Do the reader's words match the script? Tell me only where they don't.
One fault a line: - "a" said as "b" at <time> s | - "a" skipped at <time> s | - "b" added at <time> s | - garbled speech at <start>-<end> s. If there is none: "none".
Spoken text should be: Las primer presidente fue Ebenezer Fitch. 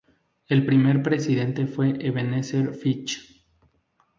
- "Las" said as "El" at 0.5 s